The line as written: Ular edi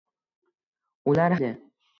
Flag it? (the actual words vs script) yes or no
no